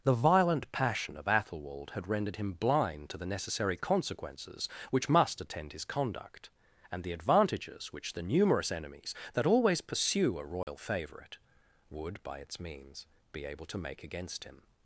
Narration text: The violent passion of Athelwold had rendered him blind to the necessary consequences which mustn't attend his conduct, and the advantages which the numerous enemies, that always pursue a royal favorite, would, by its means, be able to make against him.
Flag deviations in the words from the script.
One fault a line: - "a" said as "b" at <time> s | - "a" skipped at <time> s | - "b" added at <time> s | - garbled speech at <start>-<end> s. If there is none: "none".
- "mustn't" said as "must" at 5.1 s